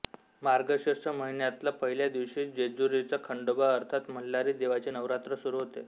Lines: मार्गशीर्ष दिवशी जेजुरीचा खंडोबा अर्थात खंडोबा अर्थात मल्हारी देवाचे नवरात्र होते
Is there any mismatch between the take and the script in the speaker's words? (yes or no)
yes